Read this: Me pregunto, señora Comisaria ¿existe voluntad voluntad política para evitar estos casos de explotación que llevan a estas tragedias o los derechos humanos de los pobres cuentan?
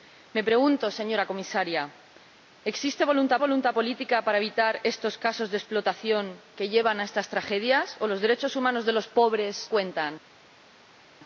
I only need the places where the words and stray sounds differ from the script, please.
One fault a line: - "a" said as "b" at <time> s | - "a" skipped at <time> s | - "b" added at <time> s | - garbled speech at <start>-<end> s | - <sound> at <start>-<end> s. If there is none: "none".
none